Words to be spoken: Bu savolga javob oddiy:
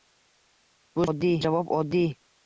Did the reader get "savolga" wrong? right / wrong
wrong